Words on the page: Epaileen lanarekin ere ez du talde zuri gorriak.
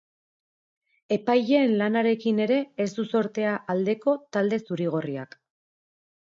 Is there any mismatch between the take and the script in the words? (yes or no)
yes